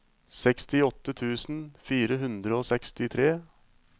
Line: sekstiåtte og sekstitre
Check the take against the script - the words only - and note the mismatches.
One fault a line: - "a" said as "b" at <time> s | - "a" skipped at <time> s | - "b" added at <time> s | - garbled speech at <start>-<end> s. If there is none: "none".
- "tusen fire hundre" added at 1.2 s